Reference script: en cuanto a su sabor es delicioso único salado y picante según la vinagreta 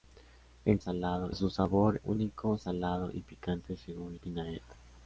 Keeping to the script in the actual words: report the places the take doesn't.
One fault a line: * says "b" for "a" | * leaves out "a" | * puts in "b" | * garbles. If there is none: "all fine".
* says "salado" for "cuanto"
* leaves out "es delicioso"
* leaves out "la"